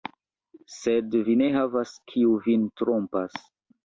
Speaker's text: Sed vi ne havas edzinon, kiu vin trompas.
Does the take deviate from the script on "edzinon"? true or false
true